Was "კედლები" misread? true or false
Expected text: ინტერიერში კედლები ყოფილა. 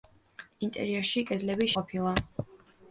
false